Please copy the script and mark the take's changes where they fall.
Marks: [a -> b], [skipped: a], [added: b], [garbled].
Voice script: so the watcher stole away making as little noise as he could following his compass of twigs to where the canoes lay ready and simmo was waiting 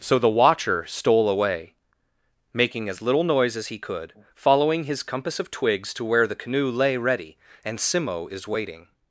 so the watcher stole away making as little noise as he could following his compass of twigs to where the [canoes -> canoe] lay ready and simmo [was -> is] waiting